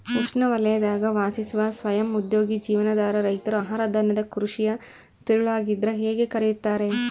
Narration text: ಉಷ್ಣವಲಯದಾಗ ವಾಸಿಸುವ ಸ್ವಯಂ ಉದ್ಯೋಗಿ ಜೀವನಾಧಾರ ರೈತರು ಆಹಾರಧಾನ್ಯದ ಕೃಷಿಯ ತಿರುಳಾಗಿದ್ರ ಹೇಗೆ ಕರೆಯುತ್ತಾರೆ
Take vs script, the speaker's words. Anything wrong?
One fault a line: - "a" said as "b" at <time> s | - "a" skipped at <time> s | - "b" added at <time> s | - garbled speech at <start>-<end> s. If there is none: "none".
none